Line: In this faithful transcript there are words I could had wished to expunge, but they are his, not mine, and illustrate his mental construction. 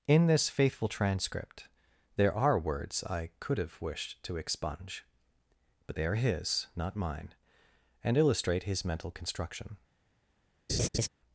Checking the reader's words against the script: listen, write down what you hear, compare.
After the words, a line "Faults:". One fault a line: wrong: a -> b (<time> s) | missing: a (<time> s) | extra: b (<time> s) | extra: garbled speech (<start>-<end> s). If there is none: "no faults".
In this faithful transcript there are words I could have wished to expunge, but they are his, not mine, and illustrate his mental construction.
Faults:
wrong: had -> have (3.6 s)